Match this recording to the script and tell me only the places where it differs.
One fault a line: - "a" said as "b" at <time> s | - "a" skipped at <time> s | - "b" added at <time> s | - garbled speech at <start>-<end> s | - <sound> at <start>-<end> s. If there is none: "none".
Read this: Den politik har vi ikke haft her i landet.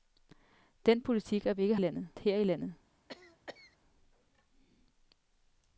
- "haft" said as "landet" at 1.8 s
- cough at 3.1-3.8 s